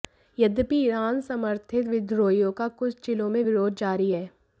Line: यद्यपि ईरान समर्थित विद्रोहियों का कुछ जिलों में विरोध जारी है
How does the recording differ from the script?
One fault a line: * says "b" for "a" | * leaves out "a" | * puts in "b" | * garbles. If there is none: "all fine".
all fine